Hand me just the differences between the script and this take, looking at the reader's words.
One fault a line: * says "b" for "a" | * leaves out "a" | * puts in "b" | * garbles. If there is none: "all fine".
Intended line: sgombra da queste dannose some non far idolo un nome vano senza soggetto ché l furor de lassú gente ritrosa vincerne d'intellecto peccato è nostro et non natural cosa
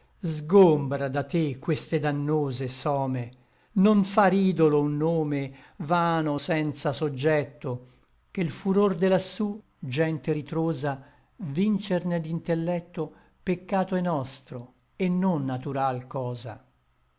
* puts in "te"